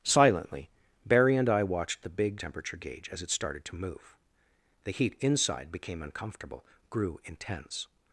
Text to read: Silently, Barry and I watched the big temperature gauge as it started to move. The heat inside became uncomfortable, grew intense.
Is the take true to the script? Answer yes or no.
yes